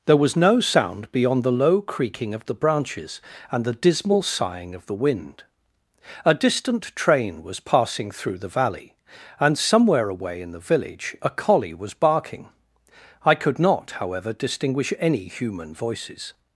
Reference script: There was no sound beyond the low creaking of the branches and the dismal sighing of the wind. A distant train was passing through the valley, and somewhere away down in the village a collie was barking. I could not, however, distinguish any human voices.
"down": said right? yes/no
no